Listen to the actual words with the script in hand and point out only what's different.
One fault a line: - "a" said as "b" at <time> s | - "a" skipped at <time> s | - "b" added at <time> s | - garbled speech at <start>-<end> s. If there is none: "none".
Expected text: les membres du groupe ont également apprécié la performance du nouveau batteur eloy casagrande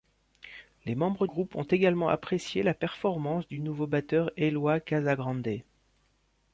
- "du" skipped at 1.3 s